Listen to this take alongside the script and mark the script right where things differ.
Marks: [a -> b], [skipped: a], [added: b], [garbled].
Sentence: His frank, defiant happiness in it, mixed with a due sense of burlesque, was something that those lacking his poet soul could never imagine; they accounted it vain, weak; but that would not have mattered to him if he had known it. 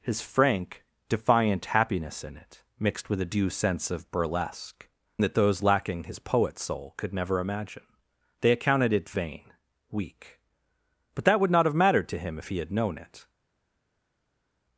His frank, defiant happiness in it, mixed with a due sense of burlesque, [skipped: was something] that those lacking his poet soul could never imagine; they accounted it vain, weak; but that would not have mattered to him if he had known it.